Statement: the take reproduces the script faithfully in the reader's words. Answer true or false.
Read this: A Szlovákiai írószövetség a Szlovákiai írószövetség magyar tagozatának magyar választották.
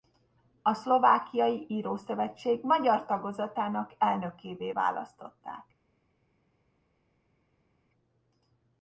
false